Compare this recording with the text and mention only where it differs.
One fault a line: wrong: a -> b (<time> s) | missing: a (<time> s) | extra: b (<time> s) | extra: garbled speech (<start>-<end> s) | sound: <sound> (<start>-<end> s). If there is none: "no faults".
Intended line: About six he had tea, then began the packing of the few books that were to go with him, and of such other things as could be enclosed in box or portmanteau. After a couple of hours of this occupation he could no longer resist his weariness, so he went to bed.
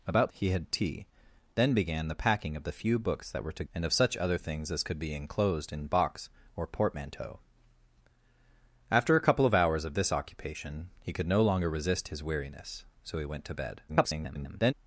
missing: six (0.3 s)
missing: go with him (3.6 s)
extra: garbled speech (13.9-14.7 s)